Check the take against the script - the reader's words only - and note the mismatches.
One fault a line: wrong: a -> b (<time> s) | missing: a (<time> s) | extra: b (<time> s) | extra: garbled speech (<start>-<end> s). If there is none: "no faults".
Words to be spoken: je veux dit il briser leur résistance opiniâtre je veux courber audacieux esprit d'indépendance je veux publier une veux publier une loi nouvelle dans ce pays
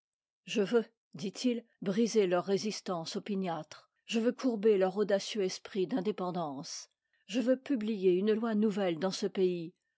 extra: leur (4.8 s)
missing: veux publier une (8.3 s)